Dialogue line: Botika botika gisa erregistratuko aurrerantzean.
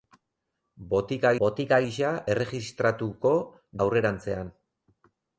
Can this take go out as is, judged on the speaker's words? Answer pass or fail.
pass